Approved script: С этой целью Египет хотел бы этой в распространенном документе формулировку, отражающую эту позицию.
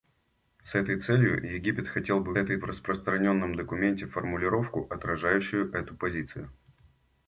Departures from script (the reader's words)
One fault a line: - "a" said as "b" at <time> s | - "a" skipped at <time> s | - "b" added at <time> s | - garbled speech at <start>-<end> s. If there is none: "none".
none